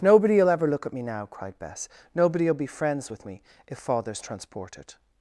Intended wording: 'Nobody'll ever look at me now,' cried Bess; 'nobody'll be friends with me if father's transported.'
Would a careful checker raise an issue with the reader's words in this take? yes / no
no